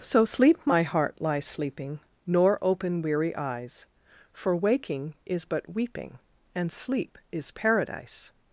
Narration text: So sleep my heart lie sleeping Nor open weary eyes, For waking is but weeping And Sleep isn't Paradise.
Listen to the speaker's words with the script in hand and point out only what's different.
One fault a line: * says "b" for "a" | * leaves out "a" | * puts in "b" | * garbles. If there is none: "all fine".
* says "is" for "isn't"